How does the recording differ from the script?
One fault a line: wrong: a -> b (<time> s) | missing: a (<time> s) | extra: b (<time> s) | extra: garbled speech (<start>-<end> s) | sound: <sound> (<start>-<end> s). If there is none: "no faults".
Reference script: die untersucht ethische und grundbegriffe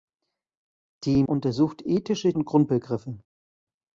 no faults